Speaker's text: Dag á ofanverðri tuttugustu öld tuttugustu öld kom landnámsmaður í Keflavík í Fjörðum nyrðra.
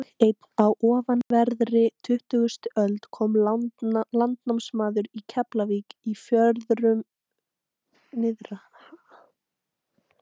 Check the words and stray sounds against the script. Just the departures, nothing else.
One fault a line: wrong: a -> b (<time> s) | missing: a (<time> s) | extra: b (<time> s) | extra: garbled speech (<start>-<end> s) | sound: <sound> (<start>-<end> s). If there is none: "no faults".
extra: einn (0.2 s)
sound: dropout (1.2-1.3 s)
missing: tuttugustu öld (3.0 s)